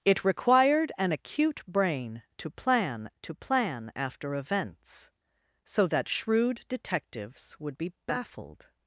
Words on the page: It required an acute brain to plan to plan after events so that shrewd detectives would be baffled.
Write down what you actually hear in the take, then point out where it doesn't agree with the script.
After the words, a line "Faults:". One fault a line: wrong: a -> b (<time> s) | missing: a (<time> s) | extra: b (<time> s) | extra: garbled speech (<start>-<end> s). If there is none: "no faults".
It required an acute brain to plan to plan after events so that shrewd detectives would be baffled.
Faults:
no faults